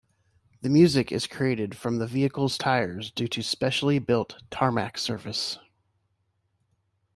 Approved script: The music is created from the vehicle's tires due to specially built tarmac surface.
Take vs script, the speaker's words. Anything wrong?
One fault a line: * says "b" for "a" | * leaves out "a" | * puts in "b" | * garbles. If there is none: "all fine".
all fine